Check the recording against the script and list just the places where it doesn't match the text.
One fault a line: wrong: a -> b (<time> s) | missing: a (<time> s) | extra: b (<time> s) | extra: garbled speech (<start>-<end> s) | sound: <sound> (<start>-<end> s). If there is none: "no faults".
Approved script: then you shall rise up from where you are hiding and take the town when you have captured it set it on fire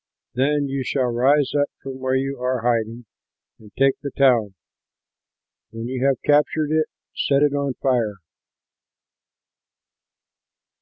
no faults